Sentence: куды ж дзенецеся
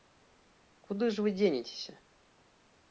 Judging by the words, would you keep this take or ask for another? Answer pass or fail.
fail